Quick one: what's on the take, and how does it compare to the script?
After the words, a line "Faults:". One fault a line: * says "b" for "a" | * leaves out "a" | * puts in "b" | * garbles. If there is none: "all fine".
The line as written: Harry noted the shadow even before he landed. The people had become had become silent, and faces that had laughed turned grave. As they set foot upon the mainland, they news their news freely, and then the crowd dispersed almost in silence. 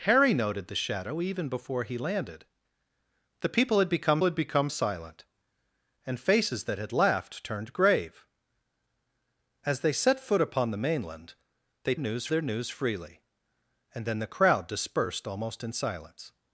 Harry noted the shadow even before he landed. The people had become had become silent, and faces that had laughed turned grave. As they set foot upon the mainland, they news their news freely, and then the crowd dispersed almost in silence.
Faults:
all fine